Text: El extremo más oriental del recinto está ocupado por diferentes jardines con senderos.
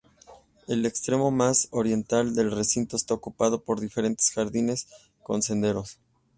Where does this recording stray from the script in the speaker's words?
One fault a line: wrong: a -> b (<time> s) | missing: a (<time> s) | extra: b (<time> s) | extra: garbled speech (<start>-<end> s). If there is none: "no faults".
no faults